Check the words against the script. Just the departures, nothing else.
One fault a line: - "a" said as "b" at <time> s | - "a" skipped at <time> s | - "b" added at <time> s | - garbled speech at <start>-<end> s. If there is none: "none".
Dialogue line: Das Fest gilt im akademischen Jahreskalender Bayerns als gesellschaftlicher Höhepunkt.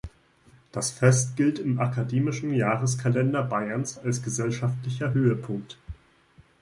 none